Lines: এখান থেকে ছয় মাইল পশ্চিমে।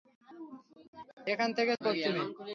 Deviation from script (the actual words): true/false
true